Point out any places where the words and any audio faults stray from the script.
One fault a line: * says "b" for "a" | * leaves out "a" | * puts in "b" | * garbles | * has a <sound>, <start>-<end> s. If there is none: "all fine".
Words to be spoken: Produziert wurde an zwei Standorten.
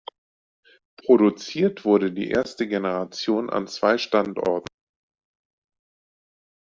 * puts in "die erste Generation"